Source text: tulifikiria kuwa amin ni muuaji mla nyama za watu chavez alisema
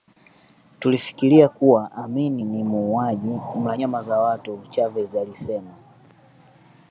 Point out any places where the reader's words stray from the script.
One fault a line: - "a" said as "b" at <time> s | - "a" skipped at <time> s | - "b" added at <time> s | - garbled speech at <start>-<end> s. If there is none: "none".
none